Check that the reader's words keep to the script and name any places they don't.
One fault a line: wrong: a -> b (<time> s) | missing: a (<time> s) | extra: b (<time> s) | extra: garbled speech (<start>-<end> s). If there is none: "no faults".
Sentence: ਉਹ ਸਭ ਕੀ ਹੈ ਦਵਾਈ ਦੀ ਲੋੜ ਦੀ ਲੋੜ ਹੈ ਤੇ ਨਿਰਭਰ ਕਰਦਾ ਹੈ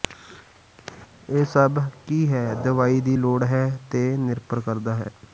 wrong: ਉਹ -> ਇਹ (1.3 s)
missing: ਦੀ ਲੋੜ (3.4 s)